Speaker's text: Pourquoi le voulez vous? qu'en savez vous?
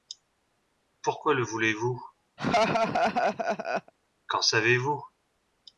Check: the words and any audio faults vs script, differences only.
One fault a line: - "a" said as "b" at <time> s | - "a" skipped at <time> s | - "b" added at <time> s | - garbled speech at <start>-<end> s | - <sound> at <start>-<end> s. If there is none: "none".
- laugh at 2.4-3.9 s